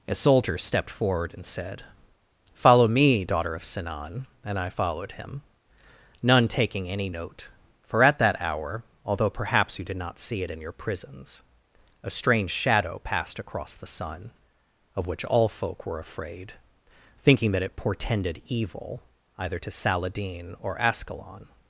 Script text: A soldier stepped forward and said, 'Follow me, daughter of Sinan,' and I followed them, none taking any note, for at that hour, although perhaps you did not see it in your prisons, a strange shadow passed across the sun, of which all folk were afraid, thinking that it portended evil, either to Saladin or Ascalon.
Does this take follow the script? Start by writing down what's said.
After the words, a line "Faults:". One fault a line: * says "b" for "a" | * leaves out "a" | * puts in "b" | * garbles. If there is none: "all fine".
A soldier stepped forward and said, 'Follow me, daughter of Sinan,' and I followed him, none taking any note, for at that hour, although perhaps you did not see it in your prisons, a strange shadow passed across the sun, of which all folk were afraid, thinking that it portended evil, either to Saladin or Ascalon.
Faults:
* says "him" for "them"